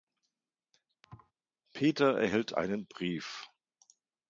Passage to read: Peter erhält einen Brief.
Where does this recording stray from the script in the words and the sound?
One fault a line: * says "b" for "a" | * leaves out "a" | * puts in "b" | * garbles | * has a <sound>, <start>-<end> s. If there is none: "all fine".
* has a thud, 1.0-1.3 s